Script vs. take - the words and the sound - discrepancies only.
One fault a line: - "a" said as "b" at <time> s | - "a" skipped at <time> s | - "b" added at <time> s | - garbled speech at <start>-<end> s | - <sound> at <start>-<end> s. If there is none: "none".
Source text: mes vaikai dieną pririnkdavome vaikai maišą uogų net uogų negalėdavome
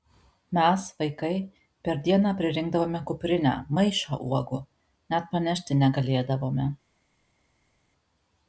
- "per" added at 1.9 s
- "vaikai" said as "kuprinę" at 3.1 s
- "uogų" said as "panešti" at 5.4 s